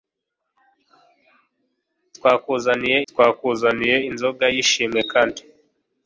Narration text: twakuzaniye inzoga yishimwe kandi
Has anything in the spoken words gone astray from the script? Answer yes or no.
yes